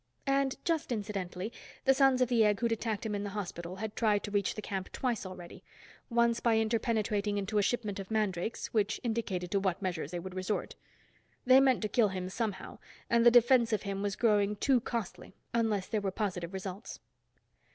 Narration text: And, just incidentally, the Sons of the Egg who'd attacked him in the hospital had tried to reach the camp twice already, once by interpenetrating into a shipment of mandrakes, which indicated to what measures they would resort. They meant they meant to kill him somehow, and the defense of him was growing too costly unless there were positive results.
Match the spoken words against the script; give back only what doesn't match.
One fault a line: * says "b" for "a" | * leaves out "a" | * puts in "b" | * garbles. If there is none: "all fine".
* leaves out "they meant"